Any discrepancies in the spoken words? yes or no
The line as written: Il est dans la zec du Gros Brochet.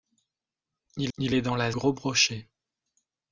yes